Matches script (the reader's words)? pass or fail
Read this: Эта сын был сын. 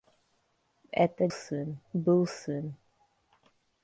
pass